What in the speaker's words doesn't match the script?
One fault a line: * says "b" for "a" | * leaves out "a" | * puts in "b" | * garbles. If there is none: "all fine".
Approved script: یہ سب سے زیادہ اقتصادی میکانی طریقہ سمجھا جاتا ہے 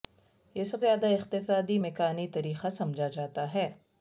* leaves out "سے"